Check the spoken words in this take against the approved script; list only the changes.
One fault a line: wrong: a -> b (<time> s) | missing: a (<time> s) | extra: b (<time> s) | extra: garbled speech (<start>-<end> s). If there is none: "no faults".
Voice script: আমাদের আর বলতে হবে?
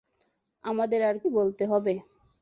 no faults